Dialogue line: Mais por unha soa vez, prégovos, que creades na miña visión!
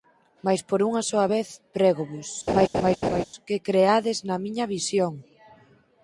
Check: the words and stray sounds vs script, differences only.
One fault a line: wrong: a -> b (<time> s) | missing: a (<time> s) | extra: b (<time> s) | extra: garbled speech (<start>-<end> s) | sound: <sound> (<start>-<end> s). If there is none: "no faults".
sound: laugh (2.5-3.2 s)